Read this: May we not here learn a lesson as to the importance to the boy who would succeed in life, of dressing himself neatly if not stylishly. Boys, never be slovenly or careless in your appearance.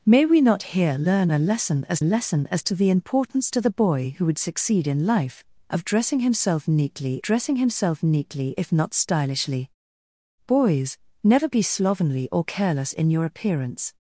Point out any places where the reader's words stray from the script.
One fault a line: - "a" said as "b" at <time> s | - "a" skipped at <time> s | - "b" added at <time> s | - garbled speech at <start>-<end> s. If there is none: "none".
- "lesson as" added at 2.0 s
- "dressing himself neatly" added at 7.2 s